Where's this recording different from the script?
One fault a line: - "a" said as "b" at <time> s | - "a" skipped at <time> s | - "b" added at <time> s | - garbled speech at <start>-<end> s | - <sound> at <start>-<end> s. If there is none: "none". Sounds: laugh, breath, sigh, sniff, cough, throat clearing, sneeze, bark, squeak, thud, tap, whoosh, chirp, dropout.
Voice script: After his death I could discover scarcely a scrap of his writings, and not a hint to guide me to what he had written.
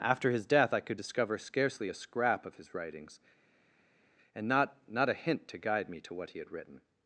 - "not" added at 4.9 s